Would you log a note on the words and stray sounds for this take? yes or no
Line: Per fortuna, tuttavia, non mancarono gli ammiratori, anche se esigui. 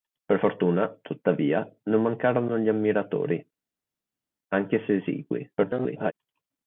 yes